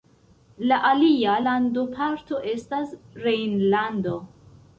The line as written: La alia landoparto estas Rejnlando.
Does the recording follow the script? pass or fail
pass